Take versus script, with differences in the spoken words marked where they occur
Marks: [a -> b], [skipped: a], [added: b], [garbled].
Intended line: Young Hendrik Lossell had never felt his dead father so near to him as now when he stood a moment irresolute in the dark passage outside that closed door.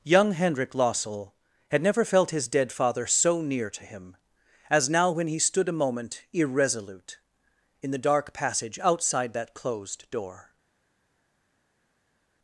Young Hendrik Lossell had never felt his dead father so near to him as now when he stood a moment irresolute in the dark passage outside that closed door.